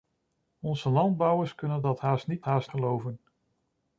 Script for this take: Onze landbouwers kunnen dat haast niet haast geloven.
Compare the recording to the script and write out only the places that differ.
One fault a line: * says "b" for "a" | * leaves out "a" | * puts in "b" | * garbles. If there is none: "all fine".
all fine